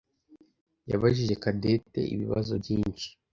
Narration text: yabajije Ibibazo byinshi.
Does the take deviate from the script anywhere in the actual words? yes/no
yes